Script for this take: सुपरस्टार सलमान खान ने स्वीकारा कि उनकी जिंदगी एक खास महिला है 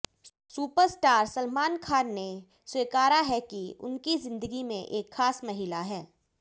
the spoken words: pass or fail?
fail